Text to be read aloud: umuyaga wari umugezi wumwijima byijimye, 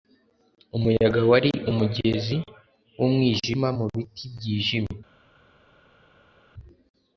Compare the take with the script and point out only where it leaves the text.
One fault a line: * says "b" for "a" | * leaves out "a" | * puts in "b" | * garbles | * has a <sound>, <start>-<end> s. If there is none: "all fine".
* puts in "mubiti"